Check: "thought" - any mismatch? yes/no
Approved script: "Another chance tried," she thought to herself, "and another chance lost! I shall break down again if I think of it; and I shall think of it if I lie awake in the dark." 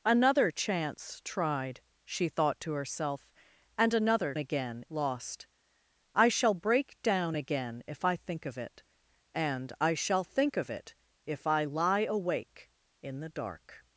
no